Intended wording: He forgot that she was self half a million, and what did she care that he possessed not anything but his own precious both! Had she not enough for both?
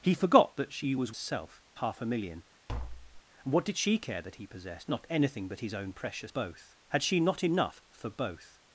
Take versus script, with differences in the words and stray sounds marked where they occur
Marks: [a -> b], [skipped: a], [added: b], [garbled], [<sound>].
He forgot that she was self half a million, [tap] and what did she care that he possessed not anything but his own precious both! Had she not enough for both?